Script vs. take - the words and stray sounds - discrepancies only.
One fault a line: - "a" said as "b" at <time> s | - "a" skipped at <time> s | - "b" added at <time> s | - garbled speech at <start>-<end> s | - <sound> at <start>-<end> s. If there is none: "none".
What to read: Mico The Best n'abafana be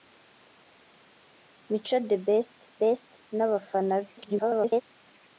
- "Best" added at 2.8 s
- garbled speech at 4.2-4.8 s